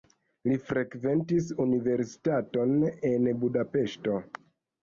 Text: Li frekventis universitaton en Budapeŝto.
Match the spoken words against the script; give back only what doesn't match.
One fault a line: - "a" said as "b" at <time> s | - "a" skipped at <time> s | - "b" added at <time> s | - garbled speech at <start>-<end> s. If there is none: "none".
none